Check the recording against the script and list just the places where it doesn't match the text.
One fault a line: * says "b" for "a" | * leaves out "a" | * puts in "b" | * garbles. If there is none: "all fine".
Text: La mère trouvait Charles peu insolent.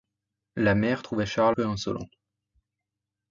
all fine